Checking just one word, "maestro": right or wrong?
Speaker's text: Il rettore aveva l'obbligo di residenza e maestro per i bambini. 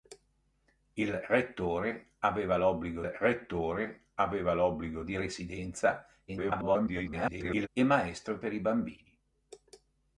right